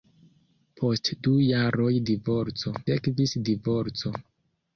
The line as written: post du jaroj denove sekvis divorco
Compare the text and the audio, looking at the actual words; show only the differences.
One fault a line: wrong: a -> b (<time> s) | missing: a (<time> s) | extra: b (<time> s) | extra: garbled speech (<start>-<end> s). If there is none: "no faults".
wrong: denove -> divorco (2.1 s)